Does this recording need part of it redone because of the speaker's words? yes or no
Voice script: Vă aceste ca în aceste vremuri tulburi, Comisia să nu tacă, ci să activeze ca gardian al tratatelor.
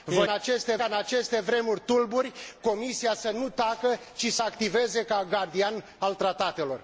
no